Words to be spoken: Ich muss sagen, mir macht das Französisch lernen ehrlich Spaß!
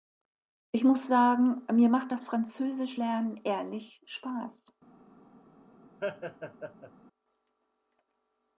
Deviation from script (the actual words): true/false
false